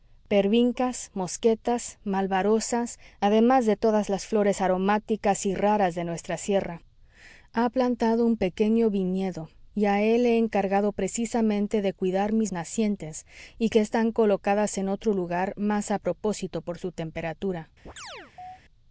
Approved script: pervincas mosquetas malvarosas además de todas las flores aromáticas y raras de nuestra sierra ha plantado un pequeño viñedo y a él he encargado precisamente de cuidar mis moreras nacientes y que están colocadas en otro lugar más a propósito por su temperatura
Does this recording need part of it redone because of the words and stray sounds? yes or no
yes